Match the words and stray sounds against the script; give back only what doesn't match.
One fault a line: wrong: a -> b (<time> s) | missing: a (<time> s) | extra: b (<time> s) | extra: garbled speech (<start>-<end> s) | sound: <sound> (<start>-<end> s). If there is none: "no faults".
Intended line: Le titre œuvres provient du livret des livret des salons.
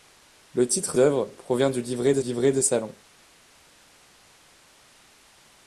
no faults